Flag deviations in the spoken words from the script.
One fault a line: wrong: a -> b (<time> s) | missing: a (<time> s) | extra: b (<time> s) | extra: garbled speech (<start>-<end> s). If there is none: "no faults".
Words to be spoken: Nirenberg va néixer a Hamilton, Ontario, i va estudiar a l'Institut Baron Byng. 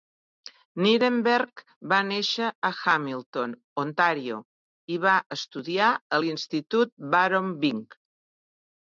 no faults